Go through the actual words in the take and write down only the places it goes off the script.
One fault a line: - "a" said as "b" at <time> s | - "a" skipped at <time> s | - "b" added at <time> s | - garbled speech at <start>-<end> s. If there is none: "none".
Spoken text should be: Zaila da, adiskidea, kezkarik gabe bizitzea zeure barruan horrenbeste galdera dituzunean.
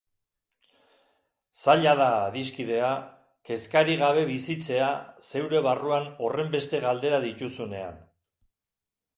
none